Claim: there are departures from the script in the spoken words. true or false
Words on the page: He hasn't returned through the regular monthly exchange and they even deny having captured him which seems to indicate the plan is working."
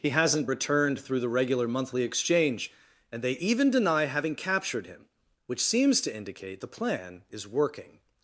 false